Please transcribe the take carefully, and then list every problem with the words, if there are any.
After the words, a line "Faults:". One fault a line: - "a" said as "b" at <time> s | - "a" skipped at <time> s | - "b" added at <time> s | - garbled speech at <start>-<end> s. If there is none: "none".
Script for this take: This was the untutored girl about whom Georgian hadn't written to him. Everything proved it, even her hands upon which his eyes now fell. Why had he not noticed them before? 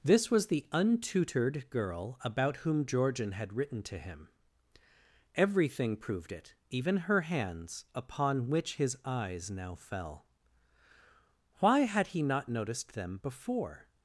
This was the untutored girl about whom Georgian had written to him. Everything proved it, even her hands upon which his eyes now fell. Why had he not noticed them before?
Faults:
- "hadn't" said as "had" at 3.3 s